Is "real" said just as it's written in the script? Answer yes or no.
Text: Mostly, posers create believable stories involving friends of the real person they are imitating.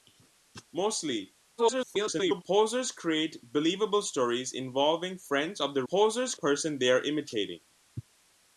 no